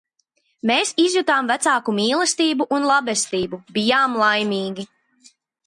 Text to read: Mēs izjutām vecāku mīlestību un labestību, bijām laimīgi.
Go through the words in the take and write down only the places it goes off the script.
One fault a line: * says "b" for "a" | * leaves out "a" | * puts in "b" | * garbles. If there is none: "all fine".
all fine